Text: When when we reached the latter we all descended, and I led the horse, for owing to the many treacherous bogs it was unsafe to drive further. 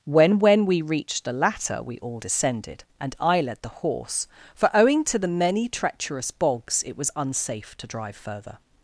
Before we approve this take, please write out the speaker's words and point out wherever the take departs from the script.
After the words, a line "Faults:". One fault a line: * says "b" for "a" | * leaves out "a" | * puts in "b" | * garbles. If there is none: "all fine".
When when we reached the latter we all descended, and I led the horse, for owing to the many treacherous bogs it was unsafe to drive further.
Faults:
all fine